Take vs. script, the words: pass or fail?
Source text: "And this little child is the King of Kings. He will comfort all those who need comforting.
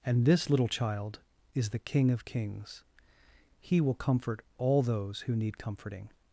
pass